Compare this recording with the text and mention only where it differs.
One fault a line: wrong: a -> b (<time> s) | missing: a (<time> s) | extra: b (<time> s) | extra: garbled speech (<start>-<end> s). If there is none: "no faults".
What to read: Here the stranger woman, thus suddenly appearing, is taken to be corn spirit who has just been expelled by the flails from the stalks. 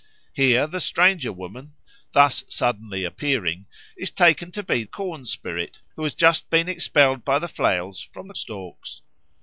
no faults